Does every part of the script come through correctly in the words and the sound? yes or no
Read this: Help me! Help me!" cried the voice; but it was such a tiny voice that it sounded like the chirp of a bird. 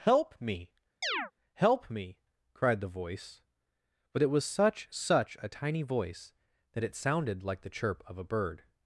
no